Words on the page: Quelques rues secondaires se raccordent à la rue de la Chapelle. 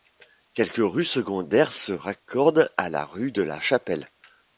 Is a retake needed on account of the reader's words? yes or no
no